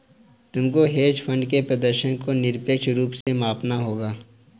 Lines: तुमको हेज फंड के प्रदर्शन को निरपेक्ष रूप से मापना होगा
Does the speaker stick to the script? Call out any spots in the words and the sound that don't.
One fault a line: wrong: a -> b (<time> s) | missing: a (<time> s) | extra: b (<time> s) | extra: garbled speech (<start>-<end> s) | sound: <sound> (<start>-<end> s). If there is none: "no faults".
sound: dropout (3.2-3.3 s)